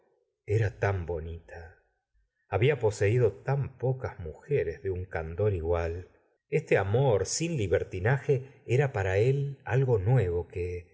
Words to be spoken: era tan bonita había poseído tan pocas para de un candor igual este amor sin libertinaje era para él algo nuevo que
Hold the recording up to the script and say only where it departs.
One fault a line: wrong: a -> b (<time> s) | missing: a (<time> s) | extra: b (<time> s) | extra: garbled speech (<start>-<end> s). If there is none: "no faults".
wrong: para -> mujeres (4.2 s)